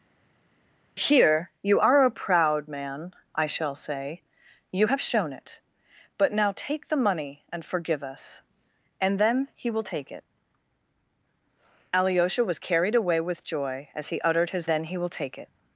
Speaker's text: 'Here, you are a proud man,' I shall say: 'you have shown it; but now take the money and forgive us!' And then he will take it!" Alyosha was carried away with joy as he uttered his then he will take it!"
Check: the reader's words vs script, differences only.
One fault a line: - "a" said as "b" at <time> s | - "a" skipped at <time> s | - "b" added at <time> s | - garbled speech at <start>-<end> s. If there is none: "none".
none